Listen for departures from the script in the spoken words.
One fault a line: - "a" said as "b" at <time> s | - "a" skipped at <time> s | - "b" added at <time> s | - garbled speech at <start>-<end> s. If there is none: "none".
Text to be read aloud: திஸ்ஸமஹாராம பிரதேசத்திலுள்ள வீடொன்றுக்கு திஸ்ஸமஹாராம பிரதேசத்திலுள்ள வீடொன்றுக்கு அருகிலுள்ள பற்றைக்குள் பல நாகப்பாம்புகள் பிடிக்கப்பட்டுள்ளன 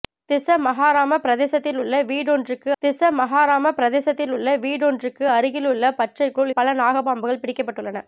none